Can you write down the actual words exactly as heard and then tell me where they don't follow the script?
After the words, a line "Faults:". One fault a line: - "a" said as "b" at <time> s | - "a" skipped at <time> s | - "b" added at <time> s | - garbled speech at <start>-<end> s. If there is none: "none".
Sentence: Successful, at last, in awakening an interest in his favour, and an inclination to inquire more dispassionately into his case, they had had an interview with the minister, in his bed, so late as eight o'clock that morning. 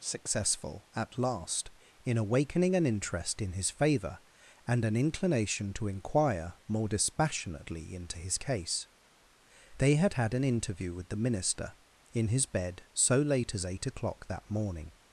Successful, at last, in awakening an interest in his favour, and an inclination to inquire more dispassionately into his case, they had had an interview with the minister, in his bed, so late as eight o'clock that morning.
Faults:
none